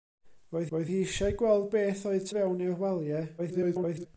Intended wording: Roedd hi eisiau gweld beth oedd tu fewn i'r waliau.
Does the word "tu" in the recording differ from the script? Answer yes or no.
yes